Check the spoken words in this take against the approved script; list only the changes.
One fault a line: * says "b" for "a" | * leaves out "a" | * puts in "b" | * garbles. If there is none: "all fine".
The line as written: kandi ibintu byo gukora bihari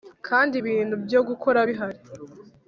all fine